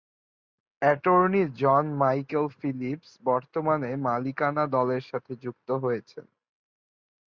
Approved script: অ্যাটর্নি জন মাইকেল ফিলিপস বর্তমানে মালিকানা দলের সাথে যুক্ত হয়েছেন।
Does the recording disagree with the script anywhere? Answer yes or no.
no